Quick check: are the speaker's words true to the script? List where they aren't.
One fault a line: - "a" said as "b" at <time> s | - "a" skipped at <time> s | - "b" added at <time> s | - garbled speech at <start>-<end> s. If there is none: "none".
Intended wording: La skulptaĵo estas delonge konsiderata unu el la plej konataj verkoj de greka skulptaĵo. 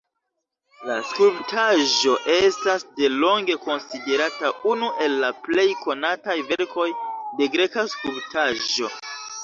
none